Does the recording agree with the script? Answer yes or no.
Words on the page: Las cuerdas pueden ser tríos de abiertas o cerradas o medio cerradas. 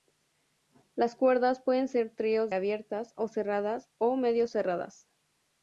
no